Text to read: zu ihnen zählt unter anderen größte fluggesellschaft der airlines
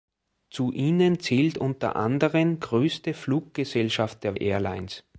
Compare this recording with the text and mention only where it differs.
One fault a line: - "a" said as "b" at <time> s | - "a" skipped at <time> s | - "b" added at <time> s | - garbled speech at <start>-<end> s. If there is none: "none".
none